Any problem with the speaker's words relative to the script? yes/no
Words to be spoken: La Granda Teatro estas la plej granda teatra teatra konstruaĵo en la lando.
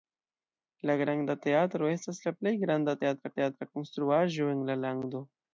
no